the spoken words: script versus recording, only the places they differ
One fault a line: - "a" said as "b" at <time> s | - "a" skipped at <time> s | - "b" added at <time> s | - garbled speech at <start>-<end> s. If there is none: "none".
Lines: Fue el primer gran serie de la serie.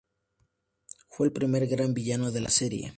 - "serie" said as "villano" at 1.9 s